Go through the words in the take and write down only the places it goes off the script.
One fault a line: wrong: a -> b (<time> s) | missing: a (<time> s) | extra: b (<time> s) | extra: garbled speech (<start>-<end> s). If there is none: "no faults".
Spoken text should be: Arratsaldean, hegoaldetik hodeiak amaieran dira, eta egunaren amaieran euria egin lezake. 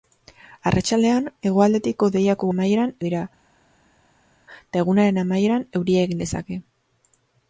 no faults